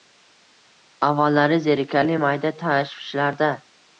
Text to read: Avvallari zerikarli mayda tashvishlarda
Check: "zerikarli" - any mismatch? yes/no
no